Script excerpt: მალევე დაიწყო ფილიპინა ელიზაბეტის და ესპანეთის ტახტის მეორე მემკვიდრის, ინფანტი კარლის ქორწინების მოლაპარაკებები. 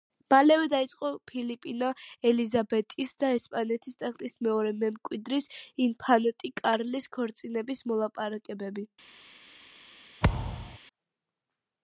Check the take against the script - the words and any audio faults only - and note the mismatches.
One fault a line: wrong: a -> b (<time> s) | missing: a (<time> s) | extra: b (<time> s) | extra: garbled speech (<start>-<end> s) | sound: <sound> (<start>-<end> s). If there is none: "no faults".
sound: thud (10.2-10.8 s)